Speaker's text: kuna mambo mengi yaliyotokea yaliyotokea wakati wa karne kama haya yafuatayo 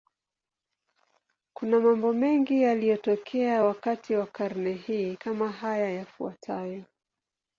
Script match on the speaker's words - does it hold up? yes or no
no